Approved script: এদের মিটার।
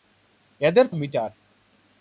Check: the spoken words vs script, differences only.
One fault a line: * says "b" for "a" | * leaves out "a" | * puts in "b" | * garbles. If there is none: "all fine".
all fine